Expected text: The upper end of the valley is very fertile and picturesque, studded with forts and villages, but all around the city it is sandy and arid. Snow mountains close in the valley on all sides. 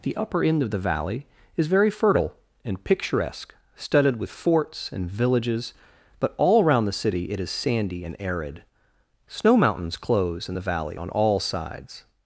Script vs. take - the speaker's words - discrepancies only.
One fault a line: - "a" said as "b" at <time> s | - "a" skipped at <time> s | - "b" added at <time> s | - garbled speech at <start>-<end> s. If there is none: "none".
none